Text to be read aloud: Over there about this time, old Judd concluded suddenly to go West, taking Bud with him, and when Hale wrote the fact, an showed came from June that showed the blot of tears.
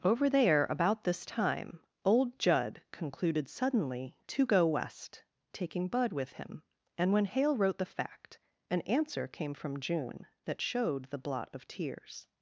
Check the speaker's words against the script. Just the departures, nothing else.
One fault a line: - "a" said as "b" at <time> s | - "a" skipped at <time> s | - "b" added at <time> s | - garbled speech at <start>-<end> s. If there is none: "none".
- "showed" said as "answer" at 8.8 s